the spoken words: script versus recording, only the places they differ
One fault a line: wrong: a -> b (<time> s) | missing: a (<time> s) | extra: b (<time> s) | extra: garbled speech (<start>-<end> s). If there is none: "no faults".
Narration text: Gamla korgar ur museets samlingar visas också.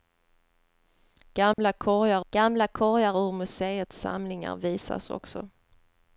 extra: gamla korgar (2.3 s)